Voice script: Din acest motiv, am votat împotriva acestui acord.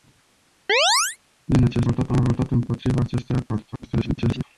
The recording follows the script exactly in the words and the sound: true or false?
false